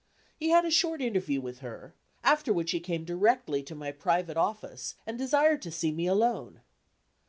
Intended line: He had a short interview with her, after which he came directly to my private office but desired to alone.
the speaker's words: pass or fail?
fail